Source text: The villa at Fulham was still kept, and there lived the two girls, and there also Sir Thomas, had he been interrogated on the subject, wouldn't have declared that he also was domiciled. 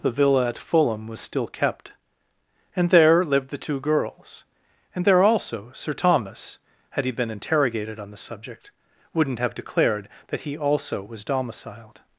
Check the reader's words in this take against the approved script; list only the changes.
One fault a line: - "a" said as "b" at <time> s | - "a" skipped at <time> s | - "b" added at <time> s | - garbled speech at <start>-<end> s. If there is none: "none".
none